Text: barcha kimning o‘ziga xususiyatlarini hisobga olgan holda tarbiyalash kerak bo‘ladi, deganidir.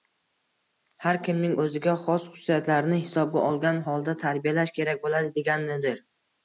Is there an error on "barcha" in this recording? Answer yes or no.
yes